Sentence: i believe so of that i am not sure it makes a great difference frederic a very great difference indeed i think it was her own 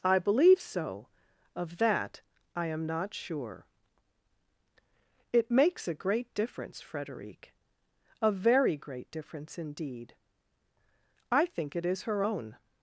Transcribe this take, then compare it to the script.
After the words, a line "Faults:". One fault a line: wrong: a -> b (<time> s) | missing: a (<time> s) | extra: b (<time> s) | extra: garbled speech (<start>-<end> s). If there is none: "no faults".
i believe so of that i am not sure it makes a great difference frederic a very great difference indeed i think it is her own
Faults:
wrong: was -> is (11.8 s)